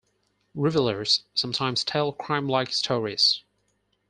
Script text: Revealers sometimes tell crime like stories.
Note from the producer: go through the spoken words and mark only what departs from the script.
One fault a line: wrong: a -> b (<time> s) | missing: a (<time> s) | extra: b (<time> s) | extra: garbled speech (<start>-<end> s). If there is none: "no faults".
no faults